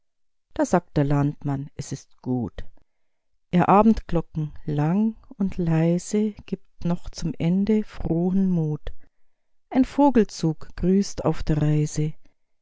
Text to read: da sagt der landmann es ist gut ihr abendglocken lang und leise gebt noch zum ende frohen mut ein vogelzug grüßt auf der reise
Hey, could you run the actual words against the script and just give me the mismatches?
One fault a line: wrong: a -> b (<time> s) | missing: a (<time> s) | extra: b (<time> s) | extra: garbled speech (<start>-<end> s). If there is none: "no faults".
no faults